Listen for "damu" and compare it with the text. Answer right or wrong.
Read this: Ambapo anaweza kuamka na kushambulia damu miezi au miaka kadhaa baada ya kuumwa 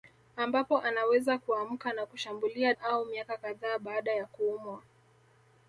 wrong